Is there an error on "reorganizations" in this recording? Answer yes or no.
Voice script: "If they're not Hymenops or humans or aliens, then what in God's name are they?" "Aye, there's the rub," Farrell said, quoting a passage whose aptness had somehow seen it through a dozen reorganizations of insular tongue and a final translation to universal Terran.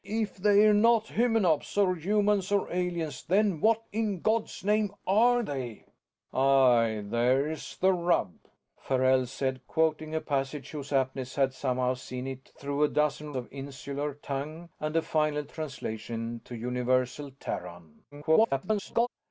yes